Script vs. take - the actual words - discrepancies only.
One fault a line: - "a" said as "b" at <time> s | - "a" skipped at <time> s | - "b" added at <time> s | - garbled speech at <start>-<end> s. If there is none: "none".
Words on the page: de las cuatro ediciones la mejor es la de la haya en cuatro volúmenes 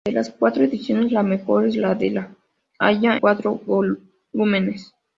- "en" skipped at 3.2 s